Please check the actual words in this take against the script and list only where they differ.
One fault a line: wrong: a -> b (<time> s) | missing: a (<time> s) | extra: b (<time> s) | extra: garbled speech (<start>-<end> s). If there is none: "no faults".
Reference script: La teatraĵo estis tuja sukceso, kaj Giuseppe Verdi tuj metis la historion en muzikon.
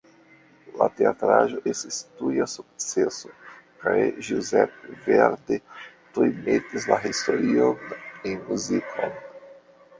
no faults